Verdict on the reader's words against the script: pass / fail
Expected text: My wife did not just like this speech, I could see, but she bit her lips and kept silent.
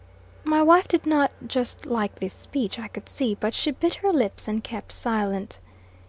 pass